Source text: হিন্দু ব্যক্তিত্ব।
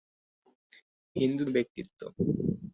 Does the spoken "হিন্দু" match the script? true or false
true